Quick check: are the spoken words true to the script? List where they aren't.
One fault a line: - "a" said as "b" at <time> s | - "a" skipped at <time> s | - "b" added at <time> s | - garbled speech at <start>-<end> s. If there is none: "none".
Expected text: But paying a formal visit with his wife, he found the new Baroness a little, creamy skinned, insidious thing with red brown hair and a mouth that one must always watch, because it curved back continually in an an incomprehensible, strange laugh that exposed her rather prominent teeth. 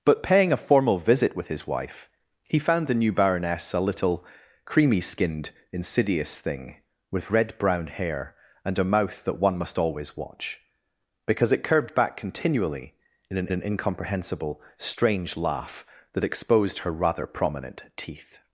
none